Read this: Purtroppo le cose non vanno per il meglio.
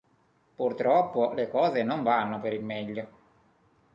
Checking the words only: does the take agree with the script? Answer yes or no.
yes